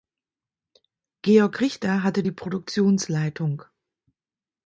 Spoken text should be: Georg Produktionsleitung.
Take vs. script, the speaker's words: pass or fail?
fail